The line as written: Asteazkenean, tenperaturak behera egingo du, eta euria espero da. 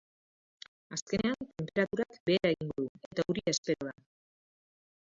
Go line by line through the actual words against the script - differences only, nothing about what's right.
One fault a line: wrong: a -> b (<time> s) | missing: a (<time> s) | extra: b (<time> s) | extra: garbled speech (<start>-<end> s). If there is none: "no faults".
no faults